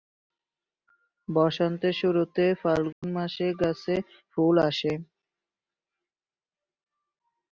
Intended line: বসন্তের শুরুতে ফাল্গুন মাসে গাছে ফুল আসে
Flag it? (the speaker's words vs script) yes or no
no